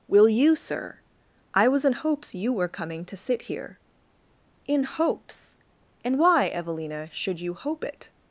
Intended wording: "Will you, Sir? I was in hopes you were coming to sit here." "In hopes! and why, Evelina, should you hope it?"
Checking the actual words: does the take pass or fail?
pass